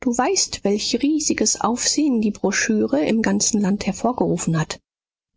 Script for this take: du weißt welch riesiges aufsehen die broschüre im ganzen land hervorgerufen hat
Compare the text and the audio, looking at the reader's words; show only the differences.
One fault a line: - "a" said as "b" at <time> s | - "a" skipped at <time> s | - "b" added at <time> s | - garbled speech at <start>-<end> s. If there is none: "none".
none